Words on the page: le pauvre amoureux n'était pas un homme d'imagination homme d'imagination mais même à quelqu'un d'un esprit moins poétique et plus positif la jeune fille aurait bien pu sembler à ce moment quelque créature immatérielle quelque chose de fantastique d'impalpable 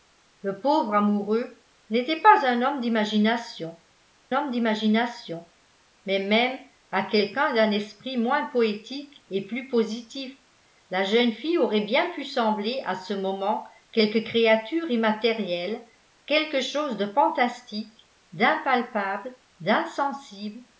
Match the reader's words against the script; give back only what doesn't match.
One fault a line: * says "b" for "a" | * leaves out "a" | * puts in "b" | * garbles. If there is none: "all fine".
all fine